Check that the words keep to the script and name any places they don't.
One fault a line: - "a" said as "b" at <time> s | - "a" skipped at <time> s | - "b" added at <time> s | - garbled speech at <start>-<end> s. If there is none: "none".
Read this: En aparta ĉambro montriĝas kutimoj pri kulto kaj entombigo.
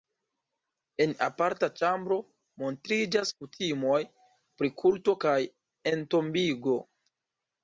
none